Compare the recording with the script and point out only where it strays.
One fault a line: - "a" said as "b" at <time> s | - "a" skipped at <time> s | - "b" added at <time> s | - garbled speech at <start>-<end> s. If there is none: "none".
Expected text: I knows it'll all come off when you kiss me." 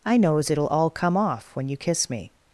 none